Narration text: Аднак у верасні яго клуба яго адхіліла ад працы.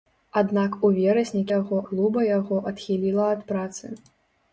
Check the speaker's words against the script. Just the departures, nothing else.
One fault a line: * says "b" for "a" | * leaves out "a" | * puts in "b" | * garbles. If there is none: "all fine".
all fine